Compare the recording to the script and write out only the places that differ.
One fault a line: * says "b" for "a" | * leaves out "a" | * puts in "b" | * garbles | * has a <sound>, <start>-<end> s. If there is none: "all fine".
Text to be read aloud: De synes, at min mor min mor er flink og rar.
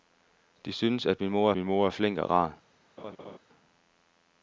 * has a laugh, 3.0-3.4 s